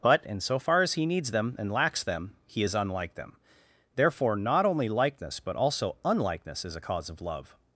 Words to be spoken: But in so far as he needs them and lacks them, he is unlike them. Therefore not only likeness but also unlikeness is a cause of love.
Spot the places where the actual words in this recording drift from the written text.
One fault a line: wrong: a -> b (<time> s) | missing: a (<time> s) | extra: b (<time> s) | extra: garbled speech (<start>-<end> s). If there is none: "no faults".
no faults